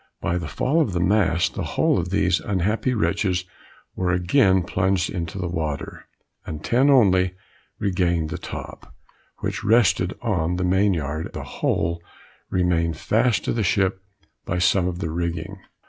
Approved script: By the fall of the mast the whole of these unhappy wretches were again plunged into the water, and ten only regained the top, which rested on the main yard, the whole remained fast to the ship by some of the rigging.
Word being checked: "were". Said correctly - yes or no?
yes